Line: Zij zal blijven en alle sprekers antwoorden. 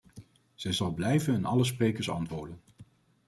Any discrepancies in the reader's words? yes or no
no